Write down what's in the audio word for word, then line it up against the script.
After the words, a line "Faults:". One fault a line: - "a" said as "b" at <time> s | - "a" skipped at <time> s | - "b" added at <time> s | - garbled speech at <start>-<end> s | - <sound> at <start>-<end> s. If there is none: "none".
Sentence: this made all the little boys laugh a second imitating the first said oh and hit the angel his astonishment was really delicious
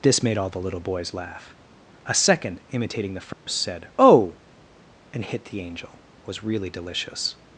this made all the little boys laugh a second imitating the first said oh and hit the angel was really delicious
Faults:
- dropout at 3.3-3.5 s
- "his astonishment" skipped at 6.0 s